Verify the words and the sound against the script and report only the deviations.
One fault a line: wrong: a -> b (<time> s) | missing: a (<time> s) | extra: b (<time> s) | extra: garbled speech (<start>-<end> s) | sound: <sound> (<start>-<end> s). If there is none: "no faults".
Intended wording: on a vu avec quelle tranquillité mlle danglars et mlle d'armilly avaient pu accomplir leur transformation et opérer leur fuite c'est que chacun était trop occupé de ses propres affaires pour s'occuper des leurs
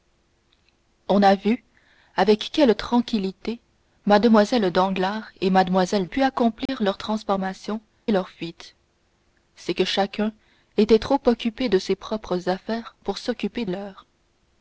missing: d'armilly avaient (6.1 s)
sound: dropout (6.7-6.7 s)
missing: et opérer (7.8 s)
missing: des (13.6 s)